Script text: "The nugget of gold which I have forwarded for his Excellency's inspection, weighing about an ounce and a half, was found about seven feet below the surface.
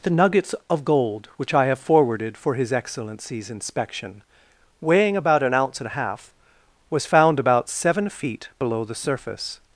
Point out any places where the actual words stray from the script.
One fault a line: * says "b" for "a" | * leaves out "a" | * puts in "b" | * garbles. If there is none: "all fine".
* says "nuggets" for "nugget"